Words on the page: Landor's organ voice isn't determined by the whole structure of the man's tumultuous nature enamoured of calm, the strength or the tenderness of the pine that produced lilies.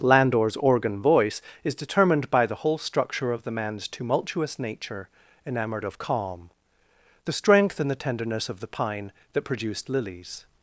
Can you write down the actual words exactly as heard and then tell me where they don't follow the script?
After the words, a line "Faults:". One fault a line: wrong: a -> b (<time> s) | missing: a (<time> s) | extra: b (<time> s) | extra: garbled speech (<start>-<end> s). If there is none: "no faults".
Landor's organ voice is determined by the whole structure of the man's tumultuous nature enamoured of calm, the strength and the tenderness of the pine that produced lilies.
Faults:
wrong: isn't -> is (1.6 s)
wrong: or -> and (7.8 s)